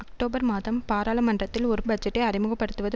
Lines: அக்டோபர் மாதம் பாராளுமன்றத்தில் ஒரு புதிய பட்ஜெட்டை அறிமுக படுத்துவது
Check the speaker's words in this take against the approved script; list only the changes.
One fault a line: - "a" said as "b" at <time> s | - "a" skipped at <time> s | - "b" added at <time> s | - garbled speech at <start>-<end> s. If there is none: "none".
- "புதிய" skipped at 1.8 s